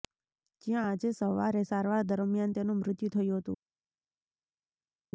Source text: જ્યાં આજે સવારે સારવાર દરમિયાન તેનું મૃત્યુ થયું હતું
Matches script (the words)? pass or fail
pass